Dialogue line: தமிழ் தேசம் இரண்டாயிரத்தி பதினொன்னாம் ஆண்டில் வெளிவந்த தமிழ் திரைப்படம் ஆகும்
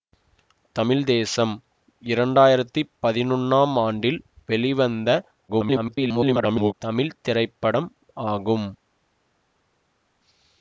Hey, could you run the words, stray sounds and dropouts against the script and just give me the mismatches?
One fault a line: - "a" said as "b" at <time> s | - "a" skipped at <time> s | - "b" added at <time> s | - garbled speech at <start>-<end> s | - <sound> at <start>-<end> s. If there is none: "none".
- garbled speech at 5.5-6.7 s